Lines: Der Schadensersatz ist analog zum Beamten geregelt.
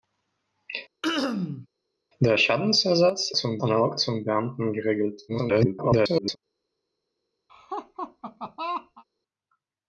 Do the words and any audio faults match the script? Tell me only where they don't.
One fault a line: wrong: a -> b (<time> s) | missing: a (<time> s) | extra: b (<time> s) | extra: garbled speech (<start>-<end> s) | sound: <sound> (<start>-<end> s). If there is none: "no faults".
sound: throat clearing (1.0-1.7 s)
wrong: ist -> zum (3.3 s)
extra: garbled speech (5.3-6.4 s)
sound: laugh (7.5-9.0 s)